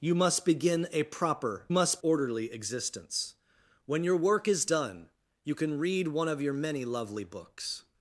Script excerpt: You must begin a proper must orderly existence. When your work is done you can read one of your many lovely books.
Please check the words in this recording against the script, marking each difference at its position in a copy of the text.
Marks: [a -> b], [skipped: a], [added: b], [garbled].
You must begin a proper must orderly existence. When your work is done you can read one of your many lovely books.